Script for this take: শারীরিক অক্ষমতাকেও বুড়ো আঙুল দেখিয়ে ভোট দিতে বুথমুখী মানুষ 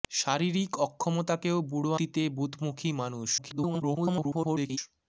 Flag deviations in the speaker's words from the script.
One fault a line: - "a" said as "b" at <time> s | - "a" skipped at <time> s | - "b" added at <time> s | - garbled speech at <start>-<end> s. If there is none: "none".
- "আঙুল দেখিয়ে ভোট" skipped at 1.9 s
- garbled speech at 3.4-4.8 s